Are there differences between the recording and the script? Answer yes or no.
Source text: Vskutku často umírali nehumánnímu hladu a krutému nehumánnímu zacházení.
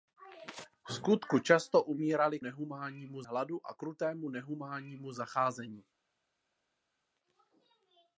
no